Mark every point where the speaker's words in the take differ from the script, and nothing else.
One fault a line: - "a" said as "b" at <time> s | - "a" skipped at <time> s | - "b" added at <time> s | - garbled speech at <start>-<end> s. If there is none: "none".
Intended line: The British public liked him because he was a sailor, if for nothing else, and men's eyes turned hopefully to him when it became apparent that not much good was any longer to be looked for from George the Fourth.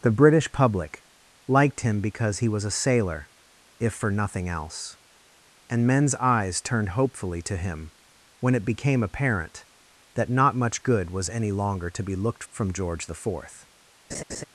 - "for" skipped at 12.4 s